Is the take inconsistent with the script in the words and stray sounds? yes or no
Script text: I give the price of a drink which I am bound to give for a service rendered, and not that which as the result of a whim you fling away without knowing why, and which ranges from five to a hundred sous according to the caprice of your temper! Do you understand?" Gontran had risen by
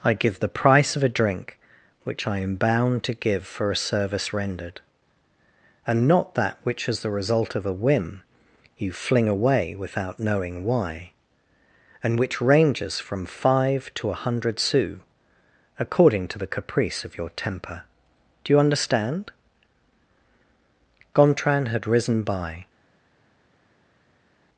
no